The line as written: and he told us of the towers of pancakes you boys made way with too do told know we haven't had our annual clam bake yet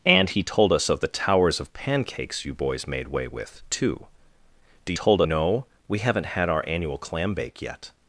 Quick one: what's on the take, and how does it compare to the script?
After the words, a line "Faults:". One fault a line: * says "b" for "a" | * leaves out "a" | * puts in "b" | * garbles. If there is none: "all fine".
and he told us of the towers of pancakes you boys made way with too do told know we haven't had our annual clam bake yet
Faults:
all fine